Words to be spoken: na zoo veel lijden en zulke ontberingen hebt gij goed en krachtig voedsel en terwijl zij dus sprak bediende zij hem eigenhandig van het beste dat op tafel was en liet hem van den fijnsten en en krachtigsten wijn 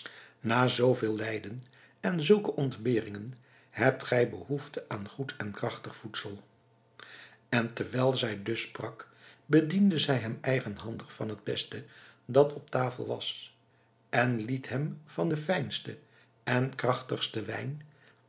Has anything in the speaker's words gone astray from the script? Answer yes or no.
yes